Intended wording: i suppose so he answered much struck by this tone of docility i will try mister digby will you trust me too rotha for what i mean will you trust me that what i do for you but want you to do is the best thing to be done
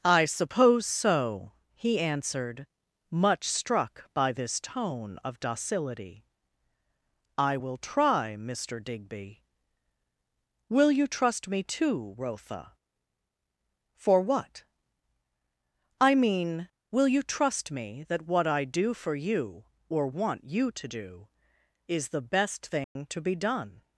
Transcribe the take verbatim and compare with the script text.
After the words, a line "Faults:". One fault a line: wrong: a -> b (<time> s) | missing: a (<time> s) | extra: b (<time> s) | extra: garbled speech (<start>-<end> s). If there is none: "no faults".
i suppose so he answered much struck by this tone of docility i will try mister digby will you trust me too rotha for what i mean will you trust me that what i do for you or want you to do is the best thing to be done
Faults:
wrong: but -> or (19.9 s)